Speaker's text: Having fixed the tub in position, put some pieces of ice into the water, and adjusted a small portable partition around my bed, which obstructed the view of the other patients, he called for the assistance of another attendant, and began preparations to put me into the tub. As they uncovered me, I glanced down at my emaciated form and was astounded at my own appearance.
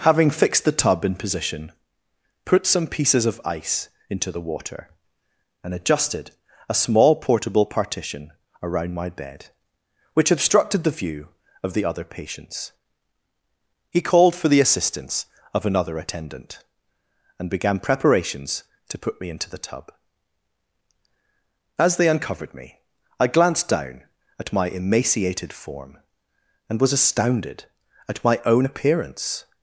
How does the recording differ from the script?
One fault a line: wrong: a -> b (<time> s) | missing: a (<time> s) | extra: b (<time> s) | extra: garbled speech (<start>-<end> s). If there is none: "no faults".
no faults